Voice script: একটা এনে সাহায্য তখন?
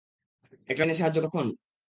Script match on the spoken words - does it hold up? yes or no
yes